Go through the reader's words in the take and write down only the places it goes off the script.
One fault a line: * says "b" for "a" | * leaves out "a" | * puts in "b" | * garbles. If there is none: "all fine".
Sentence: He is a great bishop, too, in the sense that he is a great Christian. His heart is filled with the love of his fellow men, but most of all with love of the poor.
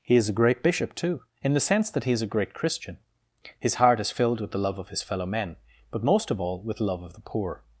all fine